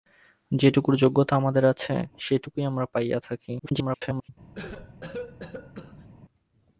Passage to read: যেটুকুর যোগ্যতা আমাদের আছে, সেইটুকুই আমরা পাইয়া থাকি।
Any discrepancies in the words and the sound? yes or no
yes